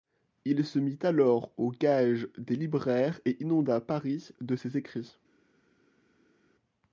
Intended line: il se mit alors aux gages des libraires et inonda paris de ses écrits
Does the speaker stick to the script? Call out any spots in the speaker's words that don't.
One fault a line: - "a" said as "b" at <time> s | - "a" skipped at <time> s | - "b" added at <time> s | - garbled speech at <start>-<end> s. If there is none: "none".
none